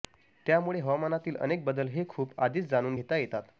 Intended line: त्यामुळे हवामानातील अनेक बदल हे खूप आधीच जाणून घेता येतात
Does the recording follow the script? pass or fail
pass